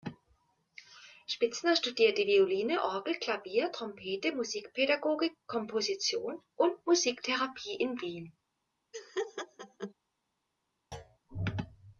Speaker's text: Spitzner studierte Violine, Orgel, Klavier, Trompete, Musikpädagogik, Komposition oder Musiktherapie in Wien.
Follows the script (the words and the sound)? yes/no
no